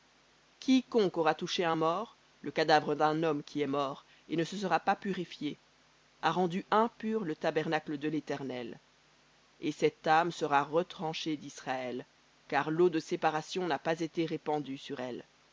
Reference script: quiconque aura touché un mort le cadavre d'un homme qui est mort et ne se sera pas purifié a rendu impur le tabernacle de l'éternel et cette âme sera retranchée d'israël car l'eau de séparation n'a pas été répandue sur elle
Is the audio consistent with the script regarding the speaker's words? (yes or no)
yes